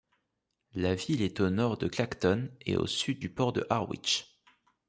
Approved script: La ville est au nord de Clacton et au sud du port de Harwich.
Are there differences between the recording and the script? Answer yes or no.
no